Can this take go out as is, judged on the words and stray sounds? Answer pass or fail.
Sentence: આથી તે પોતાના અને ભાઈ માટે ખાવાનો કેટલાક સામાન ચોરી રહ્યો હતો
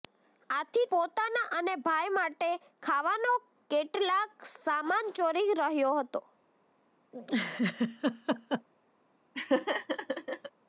fail